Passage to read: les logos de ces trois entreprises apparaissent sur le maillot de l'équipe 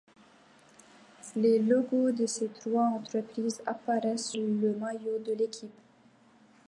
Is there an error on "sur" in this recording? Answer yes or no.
yes